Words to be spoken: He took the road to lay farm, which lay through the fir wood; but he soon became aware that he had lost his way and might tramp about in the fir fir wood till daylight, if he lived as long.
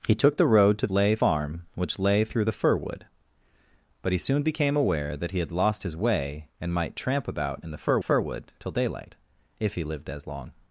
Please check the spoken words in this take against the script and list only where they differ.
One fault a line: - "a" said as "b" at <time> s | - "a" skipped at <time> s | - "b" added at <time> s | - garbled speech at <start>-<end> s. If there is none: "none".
none